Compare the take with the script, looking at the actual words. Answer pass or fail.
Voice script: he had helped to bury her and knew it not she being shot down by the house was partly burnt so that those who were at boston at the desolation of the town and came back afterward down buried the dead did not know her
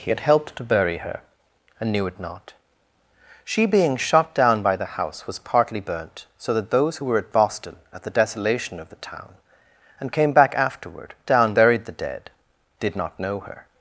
pass